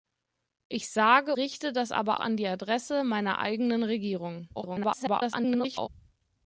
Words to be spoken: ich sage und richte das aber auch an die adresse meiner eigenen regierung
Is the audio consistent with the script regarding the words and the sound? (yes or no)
no